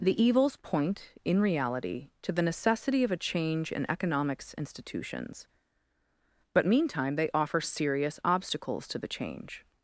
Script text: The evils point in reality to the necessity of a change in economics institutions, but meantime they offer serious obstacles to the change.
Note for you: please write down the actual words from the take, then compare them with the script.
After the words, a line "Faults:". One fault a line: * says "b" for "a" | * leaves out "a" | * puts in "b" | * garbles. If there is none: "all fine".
The evils point in reality to the necessity of a change in economics institutions, but meantime they offer serious obstacles to the change.
Faults:
all fine